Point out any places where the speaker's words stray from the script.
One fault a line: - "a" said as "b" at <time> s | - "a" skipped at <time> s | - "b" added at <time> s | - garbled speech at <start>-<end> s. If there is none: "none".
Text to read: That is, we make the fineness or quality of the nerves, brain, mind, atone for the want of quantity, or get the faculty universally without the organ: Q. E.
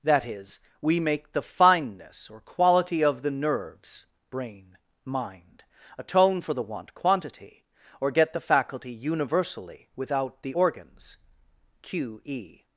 - "of" skipped at 6.9 s
- "organ" said as "organs" at 10.5 s